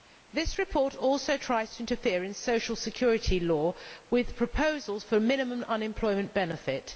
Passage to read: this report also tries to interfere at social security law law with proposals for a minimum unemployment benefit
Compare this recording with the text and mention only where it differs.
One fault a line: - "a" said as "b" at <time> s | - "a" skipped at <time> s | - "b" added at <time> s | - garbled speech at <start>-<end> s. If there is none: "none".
- "at" said as "in" at 2.2 s
- "law" skipped at 3.8 s